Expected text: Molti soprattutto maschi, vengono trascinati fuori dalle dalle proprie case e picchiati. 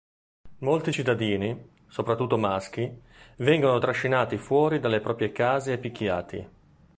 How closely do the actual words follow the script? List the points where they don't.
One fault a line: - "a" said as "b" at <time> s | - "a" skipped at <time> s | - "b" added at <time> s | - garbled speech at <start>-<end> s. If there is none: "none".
- "cittadini" added at 0.9 s
- "dalle" skipped at 5.0 s